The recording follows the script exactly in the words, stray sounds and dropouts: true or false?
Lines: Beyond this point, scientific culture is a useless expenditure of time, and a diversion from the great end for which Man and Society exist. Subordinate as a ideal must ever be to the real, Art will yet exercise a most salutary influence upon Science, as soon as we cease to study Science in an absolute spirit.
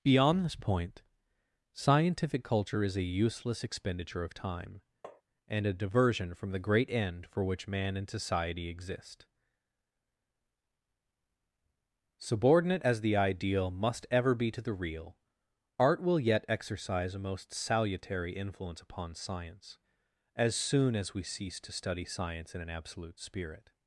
false